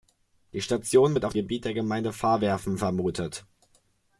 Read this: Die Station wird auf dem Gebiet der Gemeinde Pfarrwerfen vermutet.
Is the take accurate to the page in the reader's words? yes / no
no